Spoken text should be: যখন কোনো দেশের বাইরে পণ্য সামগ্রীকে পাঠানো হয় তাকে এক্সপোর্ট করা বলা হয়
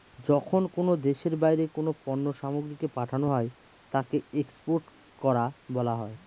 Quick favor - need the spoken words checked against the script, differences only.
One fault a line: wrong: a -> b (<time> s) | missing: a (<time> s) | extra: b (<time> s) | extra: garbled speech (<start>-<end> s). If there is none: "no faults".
extra: কোনো (1.8 s)